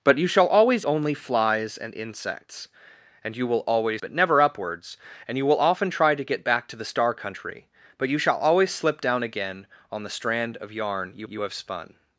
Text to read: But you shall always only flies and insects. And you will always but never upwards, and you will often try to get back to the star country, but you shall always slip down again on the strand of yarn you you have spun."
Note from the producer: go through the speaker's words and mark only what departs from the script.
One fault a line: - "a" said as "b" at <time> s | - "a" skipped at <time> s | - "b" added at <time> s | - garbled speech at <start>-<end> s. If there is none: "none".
none